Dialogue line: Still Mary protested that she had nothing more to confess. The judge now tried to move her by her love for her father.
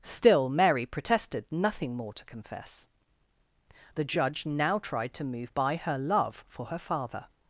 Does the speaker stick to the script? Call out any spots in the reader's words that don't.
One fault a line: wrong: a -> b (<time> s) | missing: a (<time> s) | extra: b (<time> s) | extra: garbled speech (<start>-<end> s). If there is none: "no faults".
missing: that she had (1.4 s)
missing: her (5.5 s)